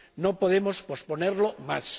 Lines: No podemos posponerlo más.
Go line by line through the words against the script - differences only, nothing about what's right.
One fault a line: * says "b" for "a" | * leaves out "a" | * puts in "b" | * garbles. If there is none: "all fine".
all fine